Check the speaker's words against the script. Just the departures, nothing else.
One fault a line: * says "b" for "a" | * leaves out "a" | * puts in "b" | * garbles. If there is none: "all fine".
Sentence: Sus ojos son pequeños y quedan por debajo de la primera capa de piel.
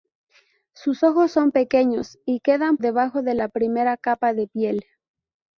* leaves out "por"